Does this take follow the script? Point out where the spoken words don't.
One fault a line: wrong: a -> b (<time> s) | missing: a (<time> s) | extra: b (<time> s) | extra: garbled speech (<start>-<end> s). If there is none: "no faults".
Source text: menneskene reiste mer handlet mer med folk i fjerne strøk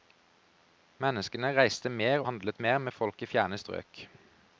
no faults